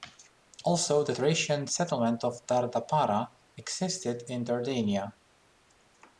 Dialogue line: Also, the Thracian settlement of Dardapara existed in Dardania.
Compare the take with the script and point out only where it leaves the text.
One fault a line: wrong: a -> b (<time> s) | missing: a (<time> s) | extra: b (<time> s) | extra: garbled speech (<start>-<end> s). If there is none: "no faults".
no faults